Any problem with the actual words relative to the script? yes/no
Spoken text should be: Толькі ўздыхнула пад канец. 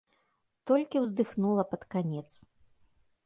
no